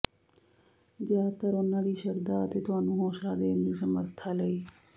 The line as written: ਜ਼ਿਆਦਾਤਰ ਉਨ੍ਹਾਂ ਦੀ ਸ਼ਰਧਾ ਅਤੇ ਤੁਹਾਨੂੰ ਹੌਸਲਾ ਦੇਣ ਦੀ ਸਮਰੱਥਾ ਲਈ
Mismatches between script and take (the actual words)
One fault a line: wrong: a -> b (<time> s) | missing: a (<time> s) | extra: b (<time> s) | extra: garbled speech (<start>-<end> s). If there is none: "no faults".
no faults